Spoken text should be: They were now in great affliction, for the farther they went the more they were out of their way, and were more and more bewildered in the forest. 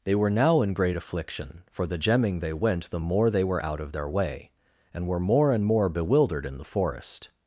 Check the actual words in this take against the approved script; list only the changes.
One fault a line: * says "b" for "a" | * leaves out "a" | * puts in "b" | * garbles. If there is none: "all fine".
* says "gemming" for "farther"